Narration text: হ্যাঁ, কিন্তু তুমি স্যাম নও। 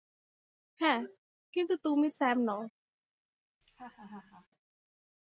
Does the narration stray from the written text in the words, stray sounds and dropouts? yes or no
yes